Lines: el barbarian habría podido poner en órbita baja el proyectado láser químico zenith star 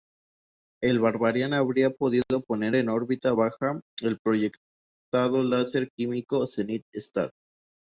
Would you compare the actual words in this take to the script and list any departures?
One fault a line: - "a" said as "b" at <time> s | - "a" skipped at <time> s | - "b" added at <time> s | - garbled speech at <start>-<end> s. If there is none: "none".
none